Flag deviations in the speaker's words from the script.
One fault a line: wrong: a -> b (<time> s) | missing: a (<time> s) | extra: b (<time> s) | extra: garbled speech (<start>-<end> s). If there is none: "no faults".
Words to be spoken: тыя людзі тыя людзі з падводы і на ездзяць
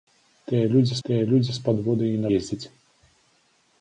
no faults